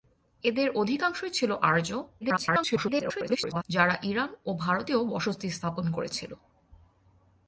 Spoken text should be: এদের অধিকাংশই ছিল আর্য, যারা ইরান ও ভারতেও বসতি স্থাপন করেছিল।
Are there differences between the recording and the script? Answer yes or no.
yes